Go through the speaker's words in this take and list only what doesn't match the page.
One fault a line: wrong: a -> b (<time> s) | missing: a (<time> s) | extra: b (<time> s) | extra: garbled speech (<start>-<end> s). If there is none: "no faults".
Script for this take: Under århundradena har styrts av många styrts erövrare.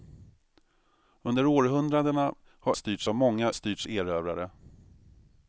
no faults